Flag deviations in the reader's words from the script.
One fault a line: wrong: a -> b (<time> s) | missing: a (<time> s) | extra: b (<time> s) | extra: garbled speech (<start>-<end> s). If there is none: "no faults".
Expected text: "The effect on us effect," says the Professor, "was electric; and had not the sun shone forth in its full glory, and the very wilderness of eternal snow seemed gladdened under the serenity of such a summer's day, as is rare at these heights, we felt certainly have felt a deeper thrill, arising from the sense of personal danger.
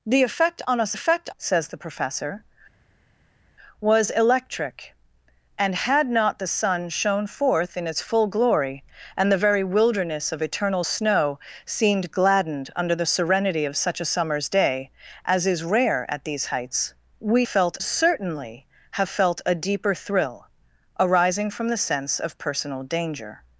no faults